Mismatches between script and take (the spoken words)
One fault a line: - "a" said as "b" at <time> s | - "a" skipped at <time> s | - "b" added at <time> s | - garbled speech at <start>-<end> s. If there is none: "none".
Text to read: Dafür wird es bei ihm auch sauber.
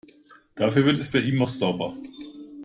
none